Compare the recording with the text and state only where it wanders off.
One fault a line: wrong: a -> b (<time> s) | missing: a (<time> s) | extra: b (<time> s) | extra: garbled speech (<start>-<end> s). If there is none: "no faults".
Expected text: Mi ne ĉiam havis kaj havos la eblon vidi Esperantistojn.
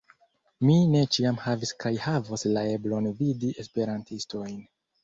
no faults